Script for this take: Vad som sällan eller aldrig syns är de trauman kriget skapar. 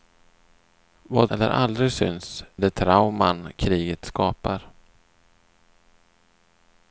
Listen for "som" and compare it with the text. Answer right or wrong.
wrong